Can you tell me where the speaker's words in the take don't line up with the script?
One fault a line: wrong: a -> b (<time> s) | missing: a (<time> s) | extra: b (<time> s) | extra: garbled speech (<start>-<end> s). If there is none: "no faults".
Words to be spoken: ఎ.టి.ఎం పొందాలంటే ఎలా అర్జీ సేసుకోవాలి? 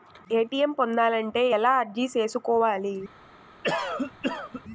no faults